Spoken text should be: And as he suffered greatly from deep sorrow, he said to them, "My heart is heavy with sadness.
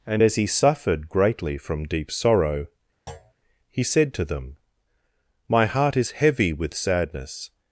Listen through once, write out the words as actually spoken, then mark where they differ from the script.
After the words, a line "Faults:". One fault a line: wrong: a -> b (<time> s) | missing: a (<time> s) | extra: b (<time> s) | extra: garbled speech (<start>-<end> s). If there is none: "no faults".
And as he suffered greatly from deep sorrow, he said to them, "My heart is heavy with sadness.
Faults:
no faults